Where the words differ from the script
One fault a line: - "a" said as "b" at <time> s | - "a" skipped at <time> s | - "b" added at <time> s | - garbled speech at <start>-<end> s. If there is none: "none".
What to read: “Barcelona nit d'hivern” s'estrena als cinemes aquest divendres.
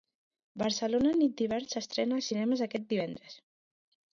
none